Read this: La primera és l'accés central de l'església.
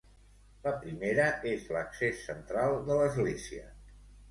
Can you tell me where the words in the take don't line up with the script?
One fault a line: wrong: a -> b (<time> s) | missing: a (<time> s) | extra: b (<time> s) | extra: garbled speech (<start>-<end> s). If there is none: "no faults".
no faults